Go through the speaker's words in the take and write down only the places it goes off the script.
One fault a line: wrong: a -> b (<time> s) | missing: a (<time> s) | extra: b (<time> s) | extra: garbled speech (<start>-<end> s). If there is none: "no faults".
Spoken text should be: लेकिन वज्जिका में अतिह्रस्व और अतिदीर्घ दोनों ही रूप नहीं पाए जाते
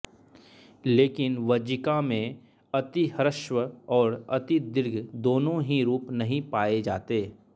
no faults